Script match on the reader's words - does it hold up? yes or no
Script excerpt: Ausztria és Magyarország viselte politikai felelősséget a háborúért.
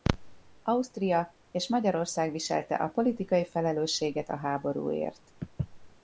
no